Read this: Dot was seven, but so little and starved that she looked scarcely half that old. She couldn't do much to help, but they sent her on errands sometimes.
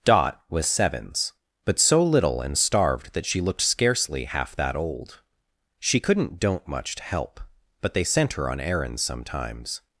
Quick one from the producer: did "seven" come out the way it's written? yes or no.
no